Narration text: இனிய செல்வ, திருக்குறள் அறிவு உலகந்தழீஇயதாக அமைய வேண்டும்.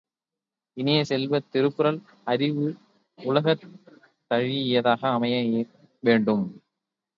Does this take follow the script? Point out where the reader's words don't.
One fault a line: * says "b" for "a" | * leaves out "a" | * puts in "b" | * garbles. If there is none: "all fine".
all fine